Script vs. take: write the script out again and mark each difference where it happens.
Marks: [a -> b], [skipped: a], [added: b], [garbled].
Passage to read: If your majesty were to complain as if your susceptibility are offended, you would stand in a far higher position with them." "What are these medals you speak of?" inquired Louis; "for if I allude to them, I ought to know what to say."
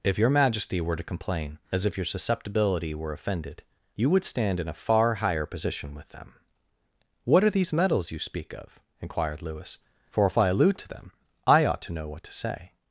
If your majesty were to complain as if your susceptibility [are -> were] offended, you would stand in a far higher position with them." "What are these medals you speak of?" inquired Louis; "for if I allude to them, I ought to know what to say."